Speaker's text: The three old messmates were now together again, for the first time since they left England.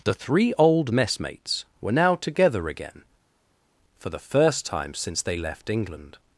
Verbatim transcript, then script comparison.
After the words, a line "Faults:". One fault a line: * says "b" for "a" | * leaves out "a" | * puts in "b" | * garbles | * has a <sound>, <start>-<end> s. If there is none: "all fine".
The three old messmates were now together again, for the first time since they left England.
Faults:
all fine